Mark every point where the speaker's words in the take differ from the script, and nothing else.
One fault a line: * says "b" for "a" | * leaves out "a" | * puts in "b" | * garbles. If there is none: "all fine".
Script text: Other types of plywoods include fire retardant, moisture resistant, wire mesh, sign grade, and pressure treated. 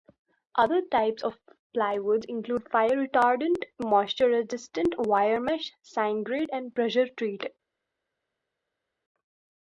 all fine